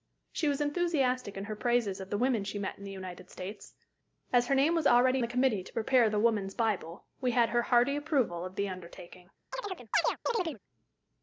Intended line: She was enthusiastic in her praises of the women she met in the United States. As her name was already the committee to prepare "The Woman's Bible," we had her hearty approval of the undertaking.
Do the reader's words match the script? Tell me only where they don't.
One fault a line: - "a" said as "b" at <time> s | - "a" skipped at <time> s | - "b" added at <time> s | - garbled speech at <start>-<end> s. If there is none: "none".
none